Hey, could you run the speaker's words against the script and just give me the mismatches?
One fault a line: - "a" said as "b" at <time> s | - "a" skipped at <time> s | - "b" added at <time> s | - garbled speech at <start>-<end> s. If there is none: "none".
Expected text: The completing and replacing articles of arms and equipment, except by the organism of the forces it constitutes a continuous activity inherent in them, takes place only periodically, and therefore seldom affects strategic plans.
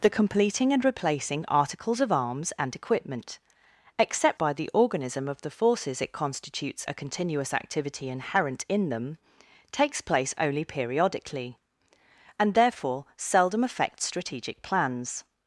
none